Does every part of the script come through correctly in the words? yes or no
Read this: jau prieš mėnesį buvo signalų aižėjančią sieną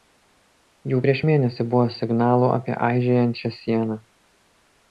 no